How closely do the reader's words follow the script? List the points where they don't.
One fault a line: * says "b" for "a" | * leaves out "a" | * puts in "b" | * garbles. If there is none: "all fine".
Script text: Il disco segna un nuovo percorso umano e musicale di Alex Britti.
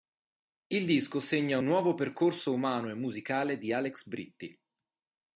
all fine